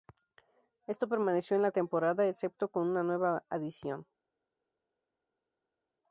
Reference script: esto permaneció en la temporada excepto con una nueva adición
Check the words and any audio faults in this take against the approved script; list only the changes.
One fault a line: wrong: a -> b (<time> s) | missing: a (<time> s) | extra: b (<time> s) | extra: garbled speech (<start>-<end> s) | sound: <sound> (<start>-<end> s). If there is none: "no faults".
no faults